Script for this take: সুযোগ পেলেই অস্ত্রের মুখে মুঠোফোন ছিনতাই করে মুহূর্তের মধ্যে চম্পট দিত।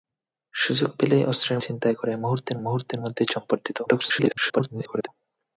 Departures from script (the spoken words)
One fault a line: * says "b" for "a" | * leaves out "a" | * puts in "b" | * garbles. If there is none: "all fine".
* leaves out "মুখে মুঠোফোন"
* puts in "মুহূর্তের"
* garbles